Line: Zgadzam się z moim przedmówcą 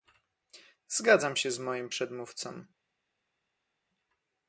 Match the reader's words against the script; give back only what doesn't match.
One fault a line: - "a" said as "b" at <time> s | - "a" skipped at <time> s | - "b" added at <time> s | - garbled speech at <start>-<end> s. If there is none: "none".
none